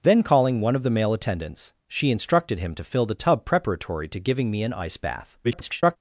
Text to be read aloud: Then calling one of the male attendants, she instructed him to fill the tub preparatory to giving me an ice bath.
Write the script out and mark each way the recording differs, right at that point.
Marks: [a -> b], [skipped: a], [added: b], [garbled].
Then calling one of the male attendants, she instructed him to fill the tub preparatory to giving me an ice bath. [garbled]